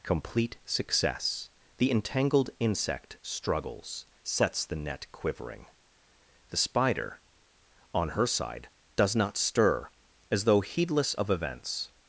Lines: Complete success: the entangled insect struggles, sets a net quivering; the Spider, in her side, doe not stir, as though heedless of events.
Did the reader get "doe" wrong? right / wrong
wrong